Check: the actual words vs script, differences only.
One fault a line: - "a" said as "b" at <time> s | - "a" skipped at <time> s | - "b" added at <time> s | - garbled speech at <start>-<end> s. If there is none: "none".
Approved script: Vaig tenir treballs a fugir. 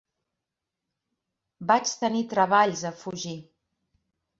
none